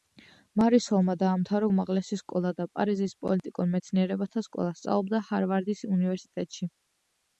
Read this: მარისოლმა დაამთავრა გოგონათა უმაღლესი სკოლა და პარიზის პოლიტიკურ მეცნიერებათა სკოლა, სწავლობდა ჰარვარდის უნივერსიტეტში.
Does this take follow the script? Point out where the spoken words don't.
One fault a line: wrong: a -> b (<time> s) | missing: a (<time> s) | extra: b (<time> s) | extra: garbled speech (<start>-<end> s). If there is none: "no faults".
missing: გოგონათა (1.7 s)